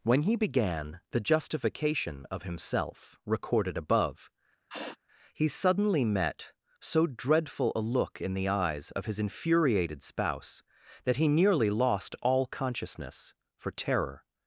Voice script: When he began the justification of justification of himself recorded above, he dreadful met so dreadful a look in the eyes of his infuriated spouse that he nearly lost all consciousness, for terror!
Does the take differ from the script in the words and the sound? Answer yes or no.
yes